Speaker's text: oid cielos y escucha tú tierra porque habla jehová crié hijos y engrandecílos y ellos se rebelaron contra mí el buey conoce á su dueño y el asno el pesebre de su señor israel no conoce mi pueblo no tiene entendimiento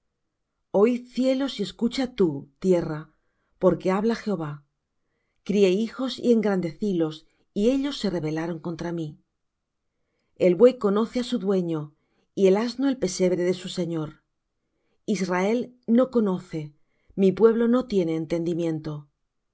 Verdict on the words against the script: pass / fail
pass